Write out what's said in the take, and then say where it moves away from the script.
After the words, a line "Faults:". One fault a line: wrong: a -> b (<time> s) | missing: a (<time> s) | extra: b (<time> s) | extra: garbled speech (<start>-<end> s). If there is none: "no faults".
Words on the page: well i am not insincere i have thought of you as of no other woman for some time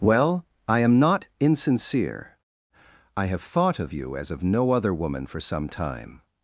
well i am not insincere i have thought of you as of no other woman for some time
Faults:
no faults